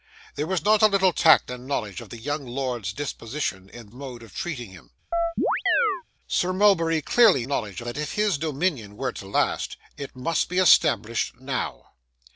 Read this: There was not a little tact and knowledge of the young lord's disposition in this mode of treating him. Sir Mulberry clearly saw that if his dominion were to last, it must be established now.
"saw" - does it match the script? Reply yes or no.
no